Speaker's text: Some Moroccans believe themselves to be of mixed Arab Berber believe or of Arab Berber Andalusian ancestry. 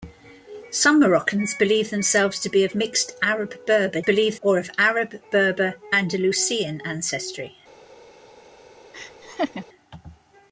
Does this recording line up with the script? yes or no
yes